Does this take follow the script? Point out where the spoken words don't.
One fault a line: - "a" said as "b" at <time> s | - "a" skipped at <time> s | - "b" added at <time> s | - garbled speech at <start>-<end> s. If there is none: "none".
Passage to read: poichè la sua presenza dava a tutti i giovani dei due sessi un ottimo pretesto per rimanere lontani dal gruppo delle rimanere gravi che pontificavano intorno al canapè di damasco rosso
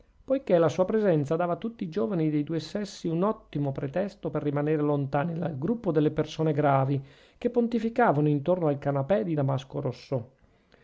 - "rimanere" said as "persone" at 6.1 s